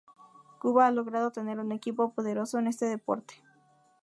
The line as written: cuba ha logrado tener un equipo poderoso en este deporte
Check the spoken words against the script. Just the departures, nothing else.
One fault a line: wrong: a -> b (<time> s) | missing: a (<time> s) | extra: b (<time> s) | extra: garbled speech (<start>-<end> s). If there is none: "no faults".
no faults